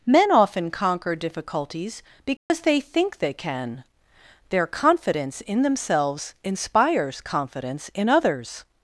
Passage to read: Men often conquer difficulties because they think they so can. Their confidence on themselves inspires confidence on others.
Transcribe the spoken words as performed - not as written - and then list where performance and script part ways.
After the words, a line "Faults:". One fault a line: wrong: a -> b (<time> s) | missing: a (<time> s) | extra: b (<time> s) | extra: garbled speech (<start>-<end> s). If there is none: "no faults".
Men often conquer difficulties because they think they can. Their confidence in themselves inspires confidence in others.
Faults:
missing: so (3.3 s)
wrong: on -> in (5.4 s)
wrong: on -> in (7.9 s)